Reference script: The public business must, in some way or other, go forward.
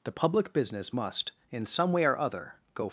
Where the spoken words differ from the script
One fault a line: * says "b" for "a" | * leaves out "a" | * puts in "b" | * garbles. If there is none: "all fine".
* leaves out "forward"